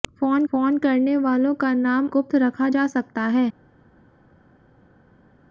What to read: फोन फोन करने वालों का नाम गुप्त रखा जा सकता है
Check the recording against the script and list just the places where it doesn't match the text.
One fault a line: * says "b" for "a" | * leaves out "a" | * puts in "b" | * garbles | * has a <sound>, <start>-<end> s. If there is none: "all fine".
all fine